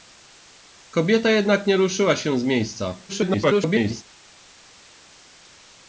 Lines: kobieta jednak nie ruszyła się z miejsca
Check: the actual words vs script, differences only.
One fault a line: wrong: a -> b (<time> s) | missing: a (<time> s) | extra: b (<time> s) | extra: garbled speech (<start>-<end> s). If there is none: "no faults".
extra: garbled speech (3.1-4.0 s)